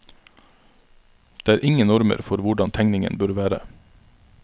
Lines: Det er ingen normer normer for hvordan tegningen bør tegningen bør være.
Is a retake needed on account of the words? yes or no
yes